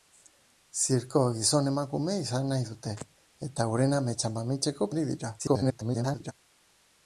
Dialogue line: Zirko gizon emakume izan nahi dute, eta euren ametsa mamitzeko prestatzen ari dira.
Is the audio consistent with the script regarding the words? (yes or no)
no